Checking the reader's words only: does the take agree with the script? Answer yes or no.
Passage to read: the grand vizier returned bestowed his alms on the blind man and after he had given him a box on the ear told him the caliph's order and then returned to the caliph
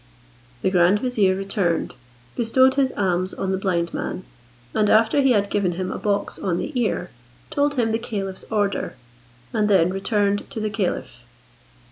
yes